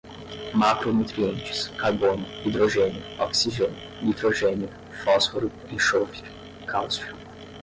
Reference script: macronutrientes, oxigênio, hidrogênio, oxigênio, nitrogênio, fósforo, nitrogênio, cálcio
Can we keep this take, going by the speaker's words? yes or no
no